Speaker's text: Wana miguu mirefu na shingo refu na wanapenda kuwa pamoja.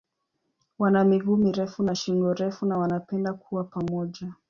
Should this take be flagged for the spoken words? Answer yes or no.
no